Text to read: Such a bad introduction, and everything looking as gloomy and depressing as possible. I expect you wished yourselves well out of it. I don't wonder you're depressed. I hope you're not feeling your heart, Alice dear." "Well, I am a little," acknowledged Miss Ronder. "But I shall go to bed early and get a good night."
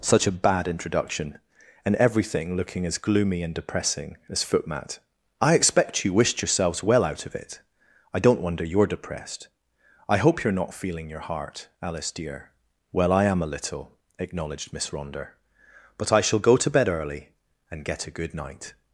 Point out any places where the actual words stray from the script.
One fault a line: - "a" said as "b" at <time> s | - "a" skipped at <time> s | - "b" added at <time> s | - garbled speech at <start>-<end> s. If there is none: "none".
- "possible" said as "footmat" at 4.4 s